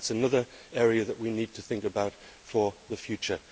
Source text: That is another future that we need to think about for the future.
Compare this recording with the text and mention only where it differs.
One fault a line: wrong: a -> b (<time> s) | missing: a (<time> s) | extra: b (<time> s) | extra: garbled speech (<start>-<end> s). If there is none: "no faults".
wrong: future -> area (0.7 s)